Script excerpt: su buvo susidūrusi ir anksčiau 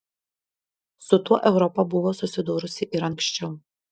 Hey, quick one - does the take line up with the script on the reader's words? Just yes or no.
no